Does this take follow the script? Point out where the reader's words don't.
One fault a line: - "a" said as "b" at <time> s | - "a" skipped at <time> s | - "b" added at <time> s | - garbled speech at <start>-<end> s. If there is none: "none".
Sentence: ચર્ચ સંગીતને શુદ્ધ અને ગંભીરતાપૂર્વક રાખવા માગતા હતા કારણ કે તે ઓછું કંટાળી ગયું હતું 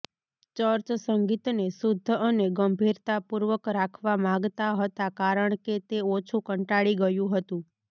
none